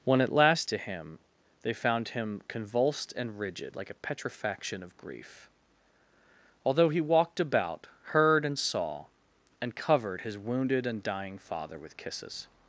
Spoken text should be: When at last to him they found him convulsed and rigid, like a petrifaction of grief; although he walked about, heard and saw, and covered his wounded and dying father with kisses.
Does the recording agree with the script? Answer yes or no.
yes